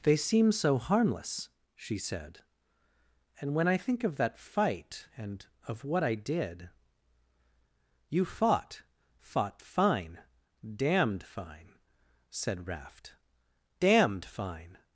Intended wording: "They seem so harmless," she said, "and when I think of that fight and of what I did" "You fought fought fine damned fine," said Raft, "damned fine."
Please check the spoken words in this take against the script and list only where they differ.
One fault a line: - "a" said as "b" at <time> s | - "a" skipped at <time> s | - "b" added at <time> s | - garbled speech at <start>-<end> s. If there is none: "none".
none